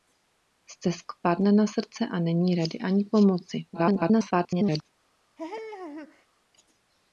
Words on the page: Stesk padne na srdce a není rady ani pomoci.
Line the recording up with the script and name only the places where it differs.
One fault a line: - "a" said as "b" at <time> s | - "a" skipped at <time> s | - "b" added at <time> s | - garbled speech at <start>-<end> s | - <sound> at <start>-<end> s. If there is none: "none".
- garbled speech at 3.7-4.9 s
- laugh at 5.4-6.3 s